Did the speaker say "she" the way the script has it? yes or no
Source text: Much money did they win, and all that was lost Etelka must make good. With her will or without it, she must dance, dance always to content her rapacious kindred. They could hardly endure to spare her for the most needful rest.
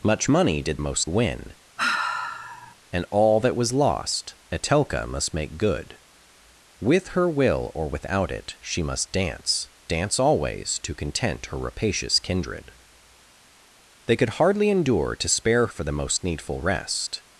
yes